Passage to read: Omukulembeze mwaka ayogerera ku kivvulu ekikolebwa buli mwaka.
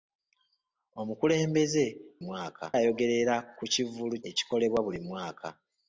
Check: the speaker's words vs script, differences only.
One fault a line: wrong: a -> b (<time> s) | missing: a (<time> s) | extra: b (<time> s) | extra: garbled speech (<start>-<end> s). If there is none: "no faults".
no faults